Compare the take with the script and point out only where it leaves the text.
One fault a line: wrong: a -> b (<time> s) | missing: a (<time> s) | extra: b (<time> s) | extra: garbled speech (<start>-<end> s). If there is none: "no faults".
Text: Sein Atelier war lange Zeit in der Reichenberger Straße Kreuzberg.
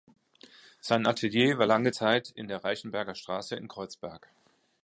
extra: in (3.6 s)